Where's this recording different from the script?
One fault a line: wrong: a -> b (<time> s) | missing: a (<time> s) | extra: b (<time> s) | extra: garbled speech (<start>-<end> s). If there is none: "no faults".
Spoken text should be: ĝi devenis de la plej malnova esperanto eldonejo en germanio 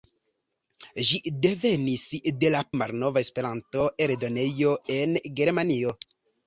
missing: plej (2.6 s)